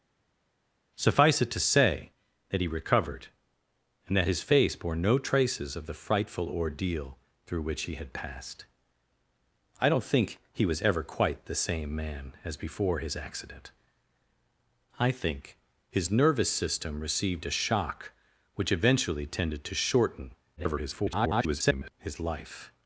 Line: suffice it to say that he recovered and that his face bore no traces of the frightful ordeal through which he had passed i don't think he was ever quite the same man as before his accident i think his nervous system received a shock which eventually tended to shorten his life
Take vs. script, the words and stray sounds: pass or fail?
fail